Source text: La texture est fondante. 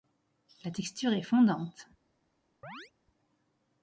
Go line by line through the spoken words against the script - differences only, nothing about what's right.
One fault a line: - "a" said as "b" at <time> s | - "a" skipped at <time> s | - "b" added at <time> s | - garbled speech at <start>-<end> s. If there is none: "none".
none